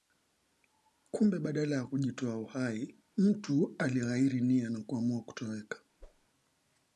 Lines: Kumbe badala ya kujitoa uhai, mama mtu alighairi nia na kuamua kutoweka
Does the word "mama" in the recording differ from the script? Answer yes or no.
yes